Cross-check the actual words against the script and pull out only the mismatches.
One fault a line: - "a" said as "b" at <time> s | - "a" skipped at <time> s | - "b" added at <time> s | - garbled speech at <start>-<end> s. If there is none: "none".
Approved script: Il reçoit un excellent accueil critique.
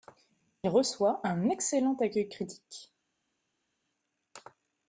none